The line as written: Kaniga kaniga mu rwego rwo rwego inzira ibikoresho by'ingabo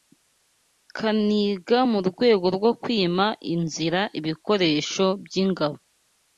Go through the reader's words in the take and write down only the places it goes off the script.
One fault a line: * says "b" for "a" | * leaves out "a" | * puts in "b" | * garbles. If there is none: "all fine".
* leaves out "kaniga"
* says "kwima" for "rwego"